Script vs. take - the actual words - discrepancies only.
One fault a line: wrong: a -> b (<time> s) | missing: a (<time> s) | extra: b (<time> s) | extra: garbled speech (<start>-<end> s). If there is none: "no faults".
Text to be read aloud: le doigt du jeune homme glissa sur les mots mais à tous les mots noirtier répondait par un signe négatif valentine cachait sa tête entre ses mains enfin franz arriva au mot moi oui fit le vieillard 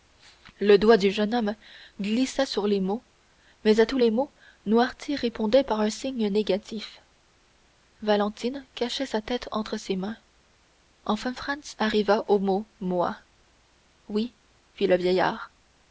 no faults